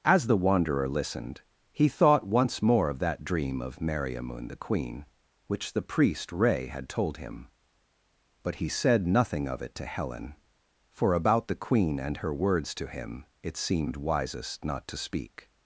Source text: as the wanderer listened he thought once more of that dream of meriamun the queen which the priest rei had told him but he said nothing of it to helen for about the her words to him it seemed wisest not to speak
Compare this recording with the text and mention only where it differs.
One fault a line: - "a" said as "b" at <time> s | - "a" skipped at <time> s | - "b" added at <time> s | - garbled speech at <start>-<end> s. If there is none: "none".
- "queen and" added at 11.6 s